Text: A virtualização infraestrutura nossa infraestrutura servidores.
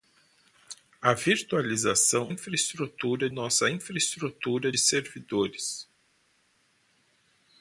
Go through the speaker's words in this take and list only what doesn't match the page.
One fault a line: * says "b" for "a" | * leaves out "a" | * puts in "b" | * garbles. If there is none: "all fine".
all fine